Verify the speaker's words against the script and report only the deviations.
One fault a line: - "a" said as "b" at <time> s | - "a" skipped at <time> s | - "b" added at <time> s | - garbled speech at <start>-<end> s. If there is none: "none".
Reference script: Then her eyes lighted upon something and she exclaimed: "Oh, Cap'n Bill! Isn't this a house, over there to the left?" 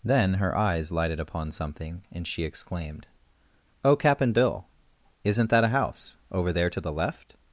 - "this" said as "that" at 5.5 s